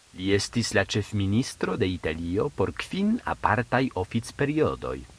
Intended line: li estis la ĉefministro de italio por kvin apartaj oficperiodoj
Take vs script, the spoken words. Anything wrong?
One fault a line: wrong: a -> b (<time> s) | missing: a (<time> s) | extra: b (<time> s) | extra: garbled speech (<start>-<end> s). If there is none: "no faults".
no faults